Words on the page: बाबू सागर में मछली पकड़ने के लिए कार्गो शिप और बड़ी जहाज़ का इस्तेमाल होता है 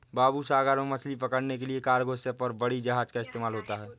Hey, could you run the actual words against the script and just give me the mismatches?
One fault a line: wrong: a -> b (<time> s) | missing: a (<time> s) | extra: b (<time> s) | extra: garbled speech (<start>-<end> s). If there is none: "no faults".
no faults